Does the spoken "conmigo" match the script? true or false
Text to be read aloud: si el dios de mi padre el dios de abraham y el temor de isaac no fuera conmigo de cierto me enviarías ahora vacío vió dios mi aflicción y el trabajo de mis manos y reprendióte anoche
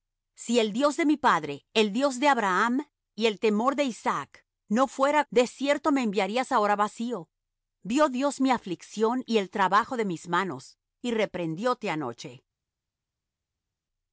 false